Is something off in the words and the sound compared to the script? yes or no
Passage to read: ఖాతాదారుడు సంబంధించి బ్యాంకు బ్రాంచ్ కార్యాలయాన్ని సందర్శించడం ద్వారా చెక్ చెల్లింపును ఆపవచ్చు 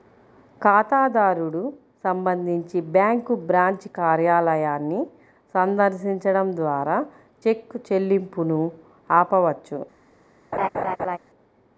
yes